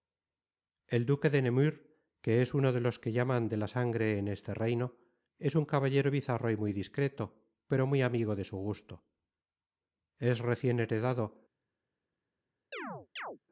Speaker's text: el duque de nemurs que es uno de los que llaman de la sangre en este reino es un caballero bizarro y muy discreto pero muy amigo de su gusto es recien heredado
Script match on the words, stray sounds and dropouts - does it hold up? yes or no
no